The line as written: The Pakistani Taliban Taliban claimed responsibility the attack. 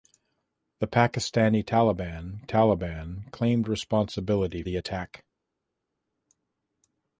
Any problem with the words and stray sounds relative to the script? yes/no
no